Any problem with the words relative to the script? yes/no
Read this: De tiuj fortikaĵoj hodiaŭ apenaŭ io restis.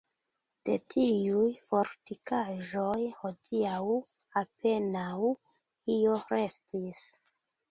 no